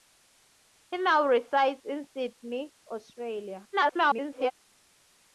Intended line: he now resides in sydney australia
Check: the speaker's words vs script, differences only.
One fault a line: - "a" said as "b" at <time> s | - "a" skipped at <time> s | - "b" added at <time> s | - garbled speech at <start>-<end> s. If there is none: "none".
- garbled speech at 3.7-4.5 s